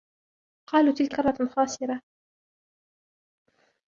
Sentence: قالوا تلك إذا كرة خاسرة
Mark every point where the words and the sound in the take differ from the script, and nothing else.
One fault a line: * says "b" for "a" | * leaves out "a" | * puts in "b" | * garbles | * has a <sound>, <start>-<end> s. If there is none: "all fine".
* leaves out "إذا"